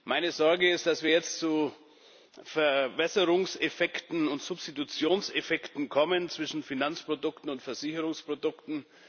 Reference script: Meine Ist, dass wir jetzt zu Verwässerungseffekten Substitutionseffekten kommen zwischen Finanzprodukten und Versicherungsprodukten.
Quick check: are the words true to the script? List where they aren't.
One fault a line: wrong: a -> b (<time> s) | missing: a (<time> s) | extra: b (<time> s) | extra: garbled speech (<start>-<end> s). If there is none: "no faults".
extra: Sorge (0.3 s)
extra: und (4.3 s)